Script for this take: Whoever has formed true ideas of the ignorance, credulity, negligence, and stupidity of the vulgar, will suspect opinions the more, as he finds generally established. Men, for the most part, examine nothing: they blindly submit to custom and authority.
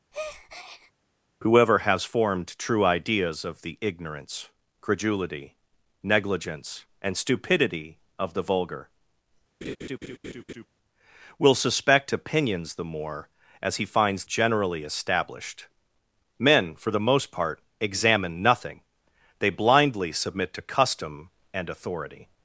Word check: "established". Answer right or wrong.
right